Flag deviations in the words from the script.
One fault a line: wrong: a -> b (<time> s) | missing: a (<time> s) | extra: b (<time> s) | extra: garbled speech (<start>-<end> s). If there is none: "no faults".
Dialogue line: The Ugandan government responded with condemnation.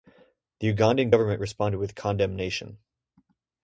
no faults